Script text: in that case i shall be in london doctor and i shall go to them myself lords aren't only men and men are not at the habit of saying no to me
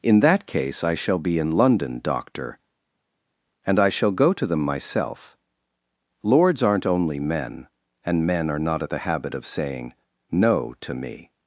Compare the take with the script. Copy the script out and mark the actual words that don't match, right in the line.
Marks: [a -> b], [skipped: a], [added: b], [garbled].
in that case i shall be in london doctor and i shall go to them myself lords aren't only men and men are not at the habit of saying no to me